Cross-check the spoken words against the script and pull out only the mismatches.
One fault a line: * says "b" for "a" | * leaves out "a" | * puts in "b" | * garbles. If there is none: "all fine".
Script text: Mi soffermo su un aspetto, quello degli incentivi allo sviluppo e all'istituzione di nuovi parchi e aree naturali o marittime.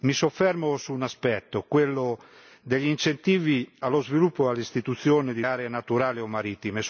* leaves out "nuovi parchi e"